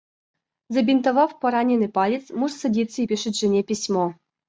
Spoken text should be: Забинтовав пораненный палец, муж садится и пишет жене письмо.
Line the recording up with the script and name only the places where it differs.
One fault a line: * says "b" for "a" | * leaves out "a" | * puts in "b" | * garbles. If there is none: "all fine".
all fine